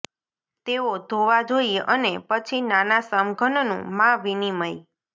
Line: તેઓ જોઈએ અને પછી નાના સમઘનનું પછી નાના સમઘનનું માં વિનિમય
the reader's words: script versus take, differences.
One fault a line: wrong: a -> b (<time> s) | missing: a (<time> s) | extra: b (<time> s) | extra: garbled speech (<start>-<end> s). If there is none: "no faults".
extra: ધોવા (1.1 s)
missing: પછી નાના સમઘનનું (3.7 s)